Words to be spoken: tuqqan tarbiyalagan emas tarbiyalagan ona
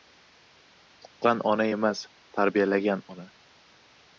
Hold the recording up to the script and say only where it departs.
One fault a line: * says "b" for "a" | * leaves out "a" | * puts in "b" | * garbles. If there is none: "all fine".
* says "ona" for "tarbiyalagan"